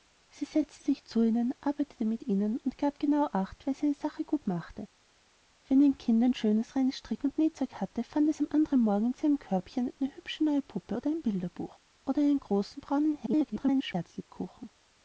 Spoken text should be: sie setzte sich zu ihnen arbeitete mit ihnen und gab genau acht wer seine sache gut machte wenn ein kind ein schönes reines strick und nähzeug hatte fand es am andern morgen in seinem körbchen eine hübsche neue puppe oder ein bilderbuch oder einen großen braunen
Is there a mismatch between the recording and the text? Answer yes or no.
yes